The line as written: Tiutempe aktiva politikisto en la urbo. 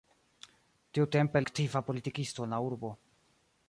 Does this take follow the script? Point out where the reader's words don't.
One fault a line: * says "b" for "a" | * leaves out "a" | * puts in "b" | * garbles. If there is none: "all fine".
all fine